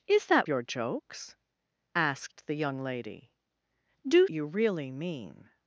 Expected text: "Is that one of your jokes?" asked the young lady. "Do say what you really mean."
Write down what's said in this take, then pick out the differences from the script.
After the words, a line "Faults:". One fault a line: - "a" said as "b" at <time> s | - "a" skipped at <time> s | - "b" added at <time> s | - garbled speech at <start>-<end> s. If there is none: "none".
"Is that your jokes?" asked the young lady. "Do you really mean."
Faults:
- "one of" skipped at 0.5 s
- "say what" skipped at 4.3 s